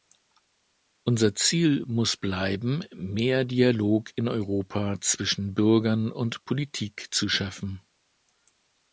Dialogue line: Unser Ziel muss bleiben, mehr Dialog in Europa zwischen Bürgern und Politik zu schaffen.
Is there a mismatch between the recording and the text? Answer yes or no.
no